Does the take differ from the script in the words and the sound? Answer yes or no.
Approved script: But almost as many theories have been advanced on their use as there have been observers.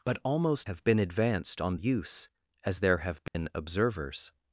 yes